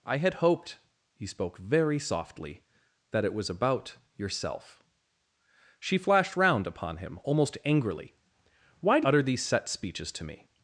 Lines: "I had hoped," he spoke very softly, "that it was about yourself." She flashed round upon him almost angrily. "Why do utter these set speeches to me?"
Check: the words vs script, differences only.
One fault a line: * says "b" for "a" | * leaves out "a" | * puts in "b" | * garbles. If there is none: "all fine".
all fine